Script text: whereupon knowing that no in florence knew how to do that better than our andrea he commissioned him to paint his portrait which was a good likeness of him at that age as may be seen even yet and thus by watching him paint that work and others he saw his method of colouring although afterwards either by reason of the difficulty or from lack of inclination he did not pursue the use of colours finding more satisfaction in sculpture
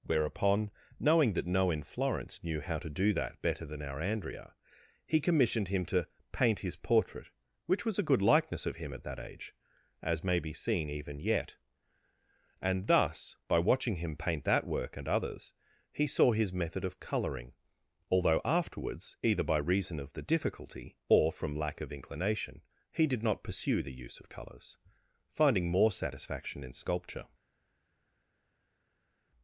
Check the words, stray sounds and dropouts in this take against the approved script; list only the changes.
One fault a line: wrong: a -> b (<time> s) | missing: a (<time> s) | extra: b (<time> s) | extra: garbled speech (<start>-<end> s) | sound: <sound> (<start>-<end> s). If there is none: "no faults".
no faults